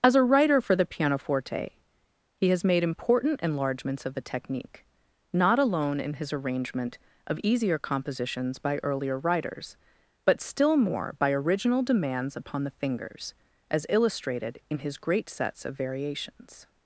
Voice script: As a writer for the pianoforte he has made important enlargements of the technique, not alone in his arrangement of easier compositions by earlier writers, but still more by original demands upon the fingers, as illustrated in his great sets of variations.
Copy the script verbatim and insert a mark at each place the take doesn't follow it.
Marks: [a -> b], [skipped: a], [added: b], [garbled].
As a writer for the pianoforte he has made important enlargements of the technique, not alone in his arrangement of easier compositions by earlier writers, but still more by original demands upon the fingers, as illustrated in his great sets of variations.